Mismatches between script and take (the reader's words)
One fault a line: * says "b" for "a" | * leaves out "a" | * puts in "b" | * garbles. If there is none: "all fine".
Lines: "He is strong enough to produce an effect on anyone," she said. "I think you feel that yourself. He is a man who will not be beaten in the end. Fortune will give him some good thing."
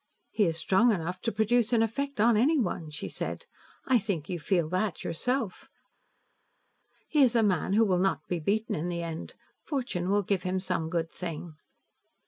all fine